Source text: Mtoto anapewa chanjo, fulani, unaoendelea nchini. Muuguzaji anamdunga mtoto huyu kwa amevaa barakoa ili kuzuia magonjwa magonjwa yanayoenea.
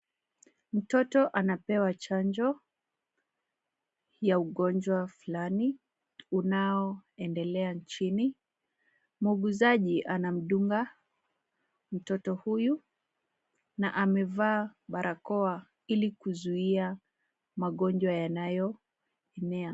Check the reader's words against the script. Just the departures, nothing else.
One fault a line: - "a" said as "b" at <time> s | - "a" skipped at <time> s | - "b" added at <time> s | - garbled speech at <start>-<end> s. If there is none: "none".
- "ya ugonjwa" added at 4.2 s
- "kwa" said as "na" at 13.8 s
- "magonjwa" skipped at 18.1 s